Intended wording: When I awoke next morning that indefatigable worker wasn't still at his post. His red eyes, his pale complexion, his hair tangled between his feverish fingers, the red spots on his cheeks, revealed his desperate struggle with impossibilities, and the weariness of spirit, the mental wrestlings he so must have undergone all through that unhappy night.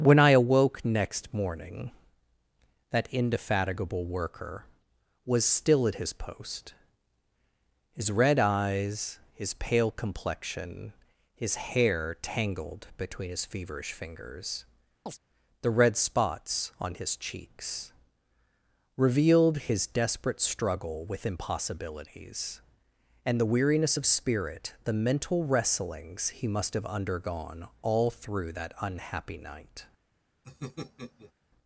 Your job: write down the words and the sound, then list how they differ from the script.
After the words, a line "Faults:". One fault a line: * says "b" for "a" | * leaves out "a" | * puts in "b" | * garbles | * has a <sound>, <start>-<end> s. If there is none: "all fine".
When I awoke next morning that indefatigable worker was still at his post. His red eyes, his pale complexion, his hair tangled between his feverish fingers, the red spots on his cheeks, revealed his desperate struggle with impossibilities, and the weariness of spirit, the mental wrestlings he must have undergone all through that unhappy night.
Faults:
* says "was" for "wasn't"
* has a chirp, 15.1-15.2 s
* leaves out "so"
* has a laugh, 30.4-31.3 s